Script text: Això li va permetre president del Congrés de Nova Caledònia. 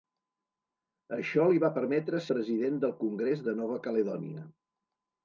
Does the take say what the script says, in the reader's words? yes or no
yes